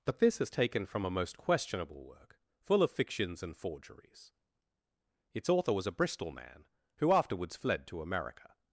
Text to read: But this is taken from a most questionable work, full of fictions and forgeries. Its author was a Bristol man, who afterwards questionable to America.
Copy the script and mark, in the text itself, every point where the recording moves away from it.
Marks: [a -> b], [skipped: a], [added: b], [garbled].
But this is taken from a most questionable work, full of fictions and forgeries. Its author was a Bristol man, who afterwards [questionable -> fled] to America.